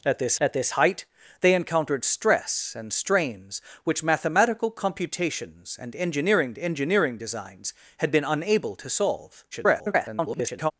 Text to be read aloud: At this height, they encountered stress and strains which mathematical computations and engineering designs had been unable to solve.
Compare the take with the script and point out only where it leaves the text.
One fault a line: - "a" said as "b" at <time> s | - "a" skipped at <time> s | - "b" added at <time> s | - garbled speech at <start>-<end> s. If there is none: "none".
- "at this" added at 0.4 s
- "engineering" added at 6.6 s
- garbled speech at 9.5-10.7 s